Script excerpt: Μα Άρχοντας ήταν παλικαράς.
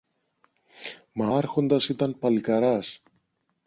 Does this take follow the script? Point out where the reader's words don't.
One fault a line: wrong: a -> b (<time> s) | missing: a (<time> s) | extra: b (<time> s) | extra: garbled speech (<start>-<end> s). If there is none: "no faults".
no faults